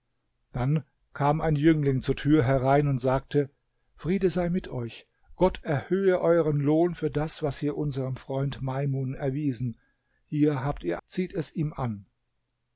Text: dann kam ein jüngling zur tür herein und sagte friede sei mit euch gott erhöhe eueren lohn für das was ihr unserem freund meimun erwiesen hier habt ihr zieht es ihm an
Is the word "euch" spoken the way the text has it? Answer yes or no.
yes